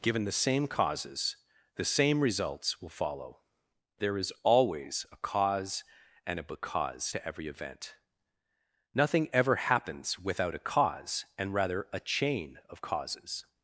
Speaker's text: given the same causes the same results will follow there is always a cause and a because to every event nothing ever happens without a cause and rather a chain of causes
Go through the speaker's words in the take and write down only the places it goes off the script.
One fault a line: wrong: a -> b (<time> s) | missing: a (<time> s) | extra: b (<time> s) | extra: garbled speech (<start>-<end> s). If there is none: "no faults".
no faults